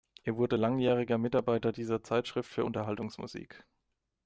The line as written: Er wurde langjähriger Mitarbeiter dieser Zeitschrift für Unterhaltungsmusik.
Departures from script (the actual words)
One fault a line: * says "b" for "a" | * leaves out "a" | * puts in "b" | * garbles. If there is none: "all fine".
all fine